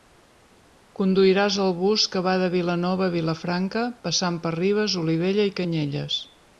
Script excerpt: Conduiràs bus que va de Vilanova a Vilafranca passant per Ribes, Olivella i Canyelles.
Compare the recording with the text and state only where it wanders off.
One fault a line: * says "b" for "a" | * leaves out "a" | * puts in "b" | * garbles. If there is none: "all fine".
* puts in "el"